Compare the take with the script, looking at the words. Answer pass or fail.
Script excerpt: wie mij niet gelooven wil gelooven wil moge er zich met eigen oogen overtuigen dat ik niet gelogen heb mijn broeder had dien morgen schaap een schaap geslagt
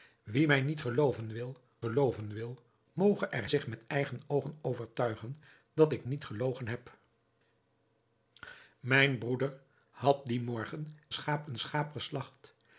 pass